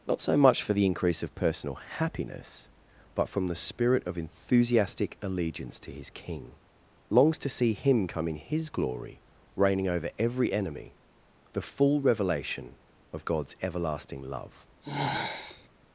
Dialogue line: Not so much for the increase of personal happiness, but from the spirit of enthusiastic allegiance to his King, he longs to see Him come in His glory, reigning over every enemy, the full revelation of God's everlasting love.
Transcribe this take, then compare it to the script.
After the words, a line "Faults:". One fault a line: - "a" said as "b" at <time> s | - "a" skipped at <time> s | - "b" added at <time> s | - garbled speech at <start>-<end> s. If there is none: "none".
Not so much for the increase of personal happiness, but from the spirit of enthusiastic allegiance to his King, longs to see Him come in His glory, reigning over every enemy, the full revelation of God's everlasting love.
Faults:
- "he" skipped at 6.5 s